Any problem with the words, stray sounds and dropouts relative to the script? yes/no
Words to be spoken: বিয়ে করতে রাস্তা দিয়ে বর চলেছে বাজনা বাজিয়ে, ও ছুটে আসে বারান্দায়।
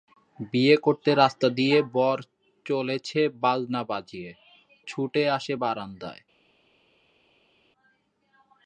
yes